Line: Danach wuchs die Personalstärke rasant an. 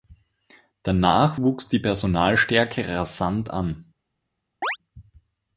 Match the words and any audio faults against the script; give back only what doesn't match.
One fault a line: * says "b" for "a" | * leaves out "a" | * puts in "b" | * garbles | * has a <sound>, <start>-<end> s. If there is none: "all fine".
* has a chirp, 4.6-4.8 s